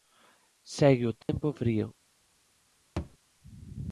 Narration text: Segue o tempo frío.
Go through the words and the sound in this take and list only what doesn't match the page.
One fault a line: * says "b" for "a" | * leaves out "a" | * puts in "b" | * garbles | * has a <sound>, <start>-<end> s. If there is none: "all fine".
* has a dropout, 1.2-1.3 s
* has a thud, 3.0-3.2 s